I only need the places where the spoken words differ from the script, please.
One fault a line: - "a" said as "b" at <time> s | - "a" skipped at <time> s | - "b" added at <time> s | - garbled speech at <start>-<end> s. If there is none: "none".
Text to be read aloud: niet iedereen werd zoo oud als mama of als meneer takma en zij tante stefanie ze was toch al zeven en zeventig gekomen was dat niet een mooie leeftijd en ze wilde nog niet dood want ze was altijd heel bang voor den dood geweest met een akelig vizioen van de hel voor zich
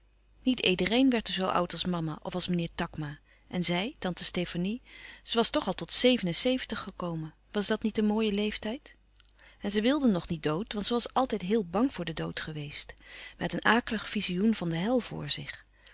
- "tot" added at 5.7 s